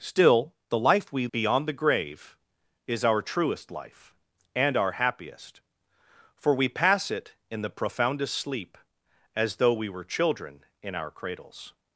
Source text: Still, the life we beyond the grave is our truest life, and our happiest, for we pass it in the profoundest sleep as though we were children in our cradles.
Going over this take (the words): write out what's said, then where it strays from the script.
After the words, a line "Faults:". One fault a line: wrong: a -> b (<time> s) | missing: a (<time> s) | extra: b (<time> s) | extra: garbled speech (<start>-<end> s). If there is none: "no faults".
Still, the life we beyond the grave is our truest life, and our happiest, for we pass it in the profoundest sleep as though we were children in our cradles.
Faults:
no faults